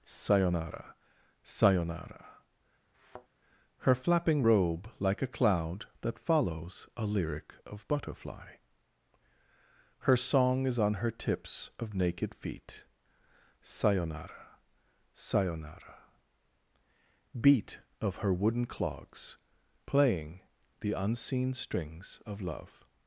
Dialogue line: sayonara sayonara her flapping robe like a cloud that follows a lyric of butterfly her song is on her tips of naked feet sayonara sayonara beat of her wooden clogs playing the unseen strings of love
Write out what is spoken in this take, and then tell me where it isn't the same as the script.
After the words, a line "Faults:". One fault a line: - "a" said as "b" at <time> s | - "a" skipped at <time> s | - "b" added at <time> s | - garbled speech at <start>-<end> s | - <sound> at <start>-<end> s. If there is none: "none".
sayonara sayonara her flapping robe like a cloud that follows a lyric of butterfly her song is on her tips of naked feet sayonara sayonara beat of her wooden clogs playing the unseen strings of love
Faults:
- thud at 2.9-3.3 s